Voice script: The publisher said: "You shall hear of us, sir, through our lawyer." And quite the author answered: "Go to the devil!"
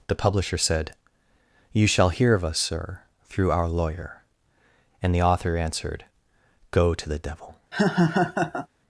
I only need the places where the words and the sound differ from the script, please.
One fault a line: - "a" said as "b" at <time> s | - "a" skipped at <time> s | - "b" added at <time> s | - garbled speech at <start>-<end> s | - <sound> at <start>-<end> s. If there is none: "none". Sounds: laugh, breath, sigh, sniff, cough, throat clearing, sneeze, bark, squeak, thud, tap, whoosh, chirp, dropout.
- "quite" skipped at 5.1 s
- laugh at 7.7-8.7 s